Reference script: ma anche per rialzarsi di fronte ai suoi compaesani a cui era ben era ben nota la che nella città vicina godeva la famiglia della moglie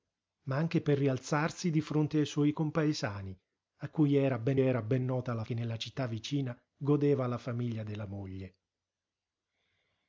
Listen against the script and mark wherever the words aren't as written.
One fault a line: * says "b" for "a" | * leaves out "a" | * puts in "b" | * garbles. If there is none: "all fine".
all fine